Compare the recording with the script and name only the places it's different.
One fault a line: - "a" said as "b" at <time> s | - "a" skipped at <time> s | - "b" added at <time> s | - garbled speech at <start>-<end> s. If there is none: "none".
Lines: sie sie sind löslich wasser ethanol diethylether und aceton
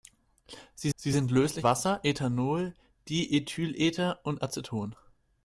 none